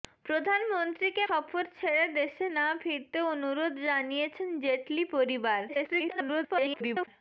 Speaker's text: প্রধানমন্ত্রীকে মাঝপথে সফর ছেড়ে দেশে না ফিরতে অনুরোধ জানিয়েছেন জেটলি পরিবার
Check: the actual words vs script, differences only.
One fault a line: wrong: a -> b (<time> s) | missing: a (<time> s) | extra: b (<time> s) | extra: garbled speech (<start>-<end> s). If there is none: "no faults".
missing: মাঝপথে (1.2 s)
extra: garbled speech (5.7-7.1 s)